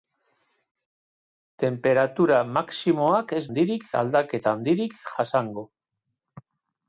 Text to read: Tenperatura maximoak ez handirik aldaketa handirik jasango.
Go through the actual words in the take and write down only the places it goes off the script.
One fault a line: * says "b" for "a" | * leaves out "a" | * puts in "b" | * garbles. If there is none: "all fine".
all fine